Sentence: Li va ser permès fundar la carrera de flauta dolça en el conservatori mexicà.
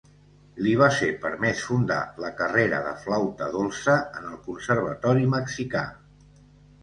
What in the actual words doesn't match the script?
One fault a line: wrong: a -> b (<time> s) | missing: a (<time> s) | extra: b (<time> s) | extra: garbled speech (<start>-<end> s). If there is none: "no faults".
no faults